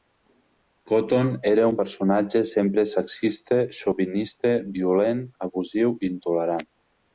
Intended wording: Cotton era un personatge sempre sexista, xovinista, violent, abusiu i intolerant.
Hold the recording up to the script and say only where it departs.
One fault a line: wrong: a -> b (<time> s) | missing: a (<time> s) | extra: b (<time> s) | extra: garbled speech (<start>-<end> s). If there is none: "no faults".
no faults